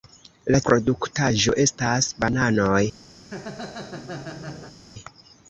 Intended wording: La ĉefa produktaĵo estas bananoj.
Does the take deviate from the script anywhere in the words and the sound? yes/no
yes